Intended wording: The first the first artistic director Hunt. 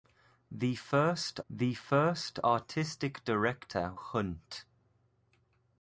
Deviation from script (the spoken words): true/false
false